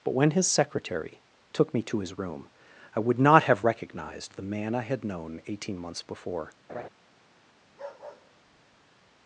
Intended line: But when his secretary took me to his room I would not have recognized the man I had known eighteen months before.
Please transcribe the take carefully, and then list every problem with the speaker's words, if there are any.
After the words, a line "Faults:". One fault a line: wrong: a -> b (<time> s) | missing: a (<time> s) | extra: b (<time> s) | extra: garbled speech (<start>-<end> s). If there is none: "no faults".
But when his secretary took me to his room I would not have recognized the man I had known eighteen months before.
Faults:
no faults